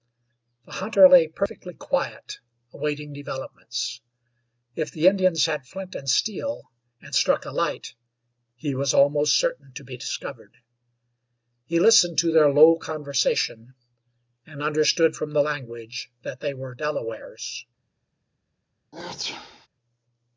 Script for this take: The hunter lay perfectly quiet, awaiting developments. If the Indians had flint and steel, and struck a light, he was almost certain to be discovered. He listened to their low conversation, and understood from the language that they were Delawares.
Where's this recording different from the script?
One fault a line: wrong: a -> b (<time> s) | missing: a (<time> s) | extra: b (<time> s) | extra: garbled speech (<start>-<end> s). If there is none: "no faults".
no faults